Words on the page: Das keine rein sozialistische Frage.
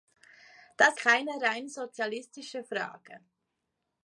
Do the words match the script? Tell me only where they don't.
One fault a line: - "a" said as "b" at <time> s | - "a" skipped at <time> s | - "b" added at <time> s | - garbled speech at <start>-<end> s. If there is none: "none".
none